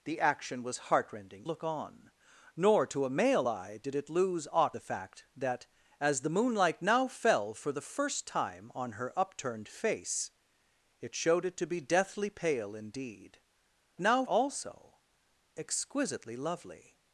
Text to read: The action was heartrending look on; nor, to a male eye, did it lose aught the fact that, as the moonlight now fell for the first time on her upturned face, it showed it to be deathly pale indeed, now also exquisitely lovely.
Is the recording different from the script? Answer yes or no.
no